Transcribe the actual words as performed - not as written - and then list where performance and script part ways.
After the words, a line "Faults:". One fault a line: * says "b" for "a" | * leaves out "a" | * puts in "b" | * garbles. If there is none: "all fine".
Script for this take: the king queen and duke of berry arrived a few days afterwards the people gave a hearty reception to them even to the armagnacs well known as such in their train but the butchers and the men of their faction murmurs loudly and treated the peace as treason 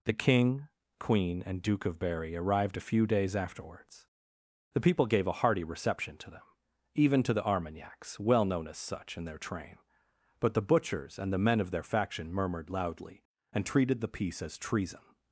the king queen and duke of berry arrived a few days afterwards the people gave a hearty reception to them even to the armagnacs well known as such in their train but the butchers and the men of their faction murmured loudly and treated the peace as treason
Faults:
* says "murmured" for "murmurs"